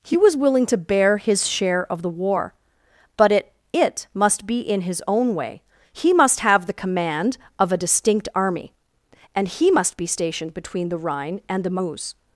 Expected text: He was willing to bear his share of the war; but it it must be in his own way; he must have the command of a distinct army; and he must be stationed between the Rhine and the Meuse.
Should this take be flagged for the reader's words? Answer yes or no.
no